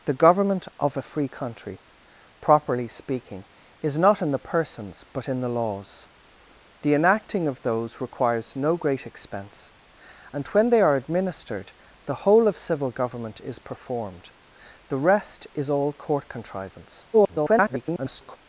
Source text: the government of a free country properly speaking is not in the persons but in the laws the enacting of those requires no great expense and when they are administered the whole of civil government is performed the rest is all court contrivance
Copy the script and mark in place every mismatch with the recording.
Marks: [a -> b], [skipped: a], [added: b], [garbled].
the government of a free country properly speaking is not in the persons but in the laws the enacting of those requires no great expense and when they are administered the whole of civil government is performed the rest is all court contrivance [garbled]